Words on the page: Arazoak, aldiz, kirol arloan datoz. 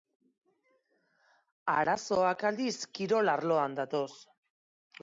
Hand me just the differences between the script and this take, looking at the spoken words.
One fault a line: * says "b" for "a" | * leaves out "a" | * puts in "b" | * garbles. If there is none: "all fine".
all fine